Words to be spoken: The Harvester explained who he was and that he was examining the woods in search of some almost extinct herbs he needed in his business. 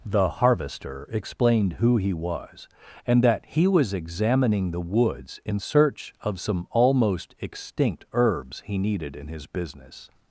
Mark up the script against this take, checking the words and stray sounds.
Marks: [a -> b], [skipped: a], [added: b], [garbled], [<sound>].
The Harvester explained who he was and that he was examining the woods in search of some almost extinct herbs he needed in his business.